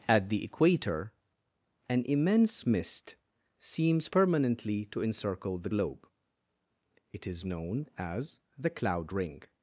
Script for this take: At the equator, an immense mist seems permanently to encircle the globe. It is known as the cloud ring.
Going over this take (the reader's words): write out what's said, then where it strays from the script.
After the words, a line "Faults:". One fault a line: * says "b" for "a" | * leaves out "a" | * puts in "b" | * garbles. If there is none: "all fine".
At the equator, an immense mist seems permanently to encircle the globe. It is known as the cloud ring.
Faults:
all fine